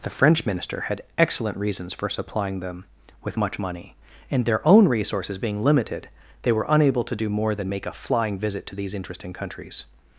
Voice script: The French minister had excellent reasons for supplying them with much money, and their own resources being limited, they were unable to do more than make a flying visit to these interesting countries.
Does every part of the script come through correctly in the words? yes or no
yes